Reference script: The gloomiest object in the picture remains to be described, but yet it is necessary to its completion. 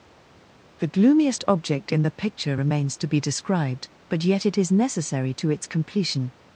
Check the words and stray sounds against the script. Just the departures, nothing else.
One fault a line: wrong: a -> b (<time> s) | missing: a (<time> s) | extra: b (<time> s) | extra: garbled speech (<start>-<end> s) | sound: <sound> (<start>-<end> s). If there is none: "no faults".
no faults